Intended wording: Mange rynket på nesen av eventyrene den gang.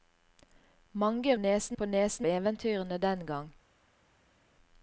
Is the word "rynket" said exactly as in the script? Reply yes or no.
no